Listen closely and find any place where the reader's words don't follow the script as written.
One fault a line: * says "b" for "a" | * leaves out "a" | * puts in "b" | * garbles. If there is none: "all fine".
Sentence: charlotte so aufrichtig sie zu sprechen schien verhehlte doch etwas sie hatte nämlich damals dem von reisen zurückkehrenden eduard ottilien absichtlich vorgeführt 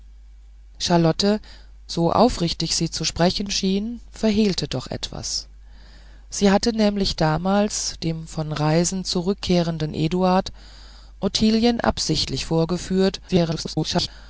* garbles